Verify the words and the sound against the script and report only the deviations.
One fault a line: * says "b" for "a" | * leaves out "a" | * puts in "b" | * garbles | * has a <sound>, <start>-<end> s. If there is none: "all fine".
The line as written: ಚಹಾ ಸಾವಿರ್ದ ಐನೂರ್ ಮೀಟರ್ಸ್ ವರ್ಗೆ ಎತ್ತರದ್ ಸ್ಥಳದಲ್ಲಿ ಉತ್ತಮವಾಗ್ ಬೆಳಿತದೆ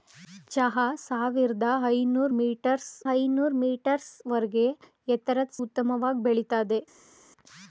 * puts in "ಐನೂರ್ ಮೀಟರ್ಸ್"
* leaves out "ಸ್ಥಳದಲ್ಲಿ"